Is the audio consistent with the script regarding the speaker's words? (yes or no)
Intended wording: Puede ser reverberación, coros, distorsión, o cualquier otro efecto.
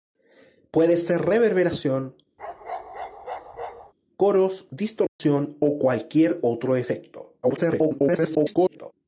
no